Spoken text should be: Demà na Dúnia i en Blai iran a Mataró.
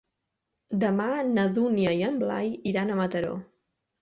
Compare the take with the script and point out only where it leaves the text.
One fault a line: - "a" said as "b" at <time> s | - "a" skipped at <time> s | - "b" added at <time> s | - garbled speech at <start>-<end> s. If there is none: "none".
none